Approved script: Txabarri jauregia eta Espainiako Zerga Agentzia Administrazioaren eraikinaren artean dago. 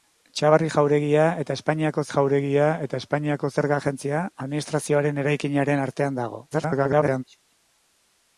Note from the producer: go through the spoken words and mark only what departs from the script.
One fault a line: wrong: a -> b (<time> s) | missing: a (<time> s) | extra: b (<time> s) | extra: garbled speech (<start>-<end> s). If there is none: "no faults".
extra: jauregia eta Espainiako (2.1 s)
extra: garbled speech (6.5-7.2 s)